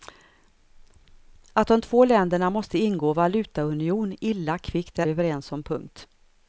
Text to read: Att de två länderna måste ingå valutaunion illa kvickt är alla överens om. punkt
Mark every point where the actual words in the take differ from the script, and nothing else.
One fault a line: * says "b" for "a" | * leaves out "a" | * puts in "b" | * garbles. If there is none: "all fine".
* leaves out "alla"